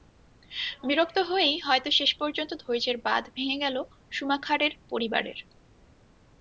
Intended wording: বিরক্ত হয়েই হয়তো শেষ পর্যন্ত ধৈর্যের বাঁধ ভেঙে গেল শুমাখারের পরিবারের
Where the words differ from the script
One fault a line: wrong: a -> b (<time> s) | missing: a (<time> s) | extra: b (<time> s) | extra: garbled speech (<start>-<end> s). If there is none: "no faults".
no faults